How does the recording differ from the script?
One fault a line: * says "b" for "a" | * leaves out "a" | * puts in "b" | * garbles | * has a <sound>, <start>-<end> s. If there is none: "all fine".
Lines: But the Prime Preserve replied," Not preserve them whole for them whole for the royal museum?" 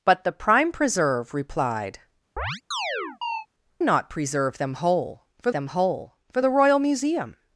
* has a chirp, 2.4-3.5 s